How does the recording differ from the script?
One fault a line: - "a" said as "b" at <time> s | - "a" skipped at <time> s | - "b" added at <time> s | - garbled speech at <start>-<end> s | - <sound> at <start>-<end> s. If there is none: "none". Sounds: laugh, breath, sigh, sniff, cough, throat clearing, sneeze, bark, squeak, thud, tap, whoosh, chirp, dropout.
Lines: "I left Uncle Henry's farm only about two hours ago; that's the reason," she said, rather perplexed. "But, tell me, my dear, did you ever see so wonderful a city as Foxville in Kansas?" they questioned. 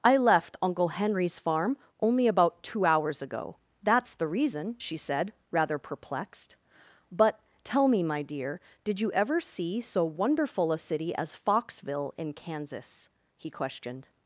- "they" said as "he" at 13.4 s